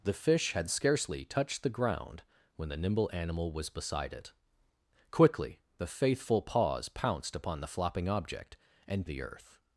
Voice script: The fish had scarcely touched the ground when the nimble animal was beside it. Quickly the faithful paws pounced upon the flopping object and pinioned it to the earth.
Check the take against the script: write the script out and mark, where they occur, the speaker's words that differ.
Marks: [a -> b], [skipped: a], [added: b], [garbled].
The fish had scarcely touched the ground when the nimble animal was beside it. Quickly the faithful paws pounced upon the flopping object and [skipped: pinioned it to] the earth.